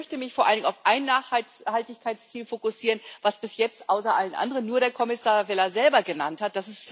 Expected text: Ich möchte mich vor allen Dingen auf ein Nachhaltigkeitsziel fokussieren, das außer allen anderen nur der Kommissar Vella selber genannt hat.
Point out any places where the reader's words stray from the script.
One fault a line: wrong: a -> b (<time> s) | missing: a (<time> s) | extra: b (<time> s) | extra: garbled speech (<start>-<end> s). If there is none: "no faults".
extra: bis jetzt (3.4 s)